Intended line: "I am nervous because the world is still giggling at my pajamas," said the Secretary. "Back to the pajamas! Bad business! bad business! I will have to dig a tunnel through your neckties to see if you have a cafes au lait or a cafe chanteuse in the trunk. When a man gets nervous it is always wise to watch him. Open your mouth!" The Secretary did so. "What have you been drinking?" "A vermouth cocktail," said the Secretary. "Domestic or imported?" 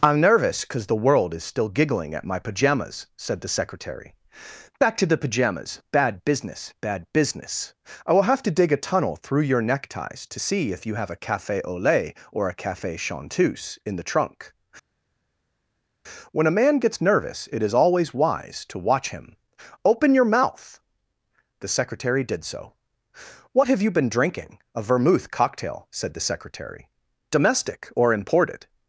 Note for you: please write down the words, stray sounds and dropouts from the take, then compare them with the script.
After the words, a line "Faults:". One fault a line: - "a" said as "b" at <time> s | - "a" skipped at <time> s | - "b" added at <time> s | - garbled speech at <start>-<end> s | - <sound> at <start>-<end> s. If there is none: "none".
"I am nervous because the world is still giggling at my pajamas," said the Secretary. "Back to the pajamas! Bad business! bad business! I will have to dig a tunnel through your neckties to see if you have a cafe au lait or a cafe chanteuse in the trunk. When a man gets nervous it is always wise to watch him. Open your mouth!" The Secretary did so. "What have you been drinking?" "A vermouth cocktail," said the Secretary. "Domestic or imported?"
Faults:
- "cafes" said as "cafe" at 11.2 s